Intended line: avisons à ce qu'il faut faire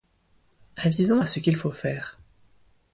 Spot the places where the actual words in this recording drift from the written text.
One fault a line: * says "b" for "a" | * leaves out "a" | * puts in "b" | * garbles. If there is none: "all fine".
all fine